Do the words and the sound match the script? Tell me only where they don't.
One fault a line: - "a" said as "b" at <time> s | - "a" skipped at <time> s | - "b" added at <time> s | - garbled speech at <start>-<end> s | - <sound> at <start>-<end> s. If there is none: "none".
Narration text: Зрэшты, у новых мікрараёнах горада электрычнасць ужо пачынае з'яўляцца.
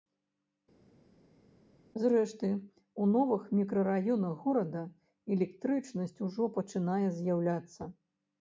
none